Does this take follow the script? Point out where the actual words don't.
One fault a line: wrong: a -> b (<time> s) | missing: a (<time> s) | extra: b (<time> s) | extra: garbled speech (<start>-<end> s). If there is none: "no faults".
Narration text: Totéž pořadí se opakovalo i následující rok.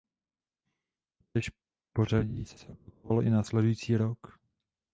extra: se (2.6 s)